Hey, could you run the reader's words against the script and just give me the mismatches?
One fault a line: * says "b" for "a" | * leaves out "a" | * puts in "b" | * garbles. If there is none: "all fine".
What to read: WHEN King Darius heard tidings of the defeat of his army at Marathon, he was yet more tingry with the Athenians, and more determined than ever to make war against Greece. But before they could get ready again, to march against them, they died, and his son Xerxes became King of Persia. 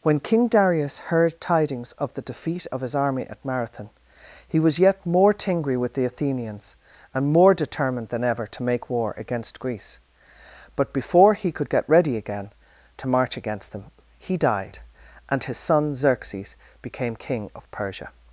* says "he" for "they"
* says "he" for "they"